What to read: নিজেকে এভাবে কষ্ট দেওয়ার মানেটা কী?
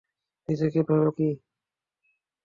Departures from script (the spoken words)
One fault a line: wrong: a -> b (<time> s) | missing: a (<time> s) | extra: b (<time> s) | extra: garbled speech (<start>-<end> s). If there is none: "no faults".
missing: কষ্ট দেওয়ার মানেটা (1.1 s)